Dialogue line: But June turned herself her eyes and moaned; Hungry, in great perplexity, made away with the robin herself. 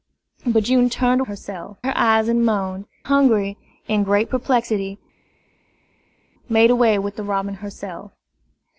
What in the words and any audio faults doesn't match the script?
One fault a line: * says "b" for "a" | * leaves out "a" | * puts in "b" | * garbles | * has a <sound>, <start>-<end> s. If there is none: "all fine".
all fine